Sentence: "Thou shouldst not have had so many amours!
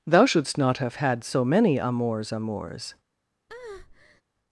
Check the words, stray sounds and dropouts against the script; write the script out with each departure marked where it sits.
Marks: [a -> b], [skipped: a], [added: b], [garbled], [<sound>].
"Thou shouldst not have had so many amours! [added: amours] [breath]